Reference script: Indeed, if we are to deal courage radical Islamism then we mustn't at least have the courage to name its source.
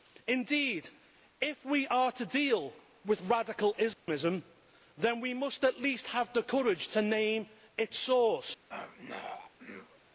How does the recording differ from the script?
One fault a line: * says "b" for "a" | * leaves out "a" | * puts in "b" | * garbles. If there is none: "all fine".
* says "with" for "courage"
* says "must" for "mustn't"